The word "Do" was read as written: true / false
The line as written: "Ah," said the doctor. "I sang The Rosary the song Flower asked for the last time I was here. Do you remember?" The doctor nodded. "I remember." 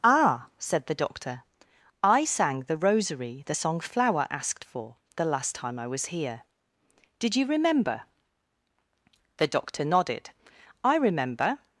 false